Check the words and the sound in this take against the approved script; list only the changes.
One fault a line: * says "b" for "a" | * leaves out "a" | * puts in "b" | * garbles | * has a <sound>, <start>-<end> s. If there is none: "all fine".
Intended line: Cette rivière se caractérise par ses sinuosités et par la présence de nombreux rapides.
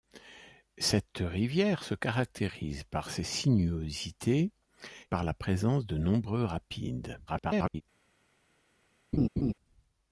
* leaves out "et"
* garbles
* has a laugh, 9.1-9.5 s